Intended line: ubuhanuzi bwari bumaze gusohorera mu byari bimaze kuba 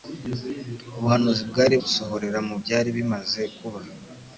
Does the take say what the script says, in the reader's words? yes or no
no